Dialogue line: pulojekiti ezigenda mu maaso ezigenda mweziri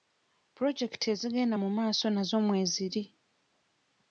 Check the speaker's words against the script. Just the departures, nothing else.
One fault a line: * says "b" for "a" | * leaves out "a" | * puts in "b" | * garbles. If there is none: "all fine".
* says "nazo" for "ezigenda"